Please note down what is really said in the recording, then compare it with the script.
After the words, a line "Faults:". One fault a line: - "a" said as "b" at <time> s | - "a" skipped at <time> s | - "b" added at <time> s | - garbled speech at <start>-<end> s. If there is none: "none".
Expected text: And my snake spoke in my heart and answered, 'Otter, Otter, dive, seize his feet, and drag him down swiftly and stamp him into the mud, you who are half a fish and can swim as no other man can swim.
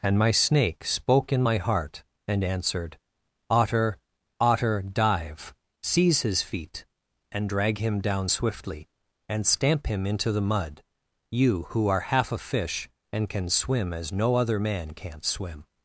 And my snake spoke in my heart and answered, 'Otter, Otter, dive, seize his feet, and drag him down swiftly and stamp him into the mud, you who are half a fish and can swim as no other man can't swim.
Faults:
- "can" said as "can't" at 14.9 s